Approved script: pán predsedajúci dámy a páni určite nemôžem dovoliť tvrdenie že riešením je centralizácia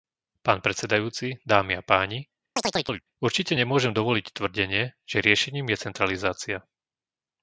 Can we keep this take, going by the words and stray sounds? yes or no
no